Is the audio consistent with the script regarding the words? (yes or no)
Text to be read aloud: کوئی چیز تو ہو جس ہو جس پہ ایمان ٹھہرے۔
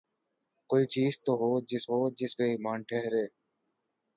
yes